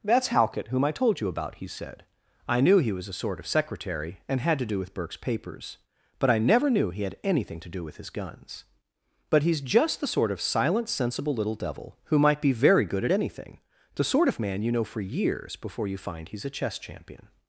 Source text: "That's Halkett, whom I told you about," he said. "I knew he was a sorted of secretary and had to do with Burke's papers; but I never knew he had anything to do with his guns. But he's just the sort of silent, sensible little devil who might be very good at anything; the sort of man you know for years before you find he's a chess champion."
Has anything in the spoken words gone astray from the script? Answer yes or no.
yes